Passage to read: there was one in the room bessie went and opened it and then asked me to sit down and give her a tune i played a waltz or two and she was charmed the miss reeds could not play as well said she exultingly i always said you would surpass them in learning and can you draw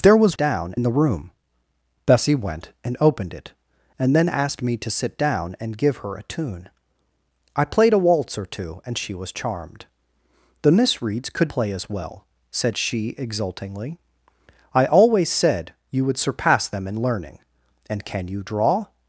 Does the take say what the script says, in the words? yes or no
no